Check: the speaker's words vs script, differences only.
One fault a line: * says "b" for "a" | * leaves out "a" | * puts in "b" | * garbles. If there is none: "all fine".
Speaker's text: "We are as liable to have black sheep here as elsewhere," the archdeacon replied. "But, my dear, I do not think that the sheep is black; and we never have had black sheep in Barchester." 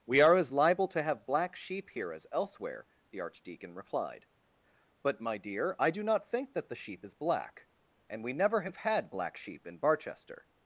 all fine